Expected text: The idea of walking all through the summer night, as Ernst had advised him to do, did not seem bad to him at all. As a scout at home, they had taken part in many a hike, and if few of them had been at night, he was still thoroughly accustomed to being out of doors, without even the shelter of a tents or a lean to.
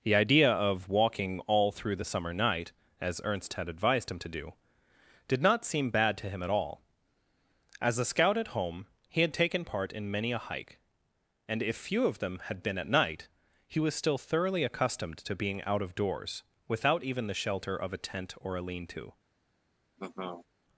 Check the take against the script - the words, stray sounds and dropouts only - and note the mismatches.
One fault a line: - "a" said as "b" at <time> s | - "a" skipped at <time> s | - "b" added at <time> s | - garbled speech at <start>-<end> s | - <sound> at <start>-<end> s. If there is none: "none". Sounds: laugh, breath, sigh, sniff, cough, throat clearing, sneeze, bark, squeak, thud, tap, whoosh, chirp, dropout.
- "they" said as "he" at 9.1 s
- "tents" said as "tent" at 18.0 s
- laugh at 20.0-20.5 s